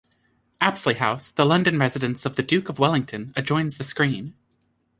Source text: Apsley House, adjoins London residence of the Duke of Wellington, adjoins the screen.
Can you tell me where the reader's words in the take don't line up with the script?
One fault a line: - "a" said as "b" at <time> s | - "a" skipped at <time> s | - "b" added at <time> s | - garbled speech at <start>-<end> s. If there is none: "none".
- "adjoins" said as "the" at 1.3 s